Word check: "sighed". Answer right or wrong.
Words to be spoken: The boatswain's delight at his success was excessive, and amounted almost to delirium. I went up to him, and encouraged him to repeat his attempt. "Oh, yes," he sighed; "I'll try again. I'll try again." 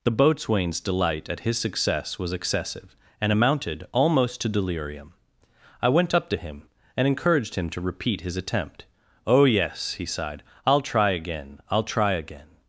right